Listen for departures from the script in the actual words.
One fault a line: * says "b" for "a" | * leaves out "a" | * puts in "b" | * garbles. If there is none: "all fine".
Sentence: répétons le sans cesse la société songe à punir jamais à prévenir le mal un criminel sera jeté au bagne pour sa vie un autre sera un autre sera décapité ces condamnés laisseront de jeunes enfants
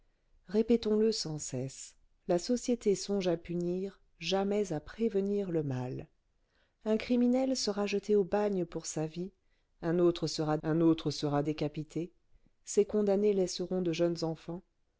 all fine